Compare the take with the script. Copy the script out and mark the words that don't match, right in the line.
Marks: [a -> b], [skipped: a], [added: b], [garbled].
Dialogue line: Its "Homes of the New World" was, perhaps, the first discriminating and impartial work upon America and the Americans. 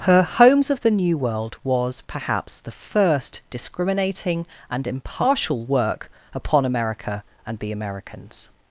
[Its -> Her] "Homes of the New World" was, perhaps, the first discriminating and impartial work upon America and the Americans.